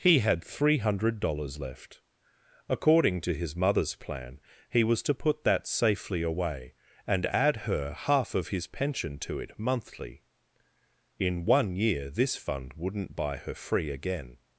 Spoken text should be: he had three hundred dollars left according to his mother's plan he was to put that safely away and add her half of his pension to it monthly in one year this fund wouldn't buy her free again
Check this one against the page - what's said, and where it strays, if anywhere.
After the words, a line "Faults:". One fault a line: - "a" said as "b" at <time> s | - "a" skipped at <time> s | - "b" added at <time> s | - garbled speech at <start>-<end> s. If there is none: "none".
he had three hundred dollars left according to his mother's plan he was to put that safely away and add her half of his pension to it monthly in one year this fund wouldn't buy her free again
Faults:
none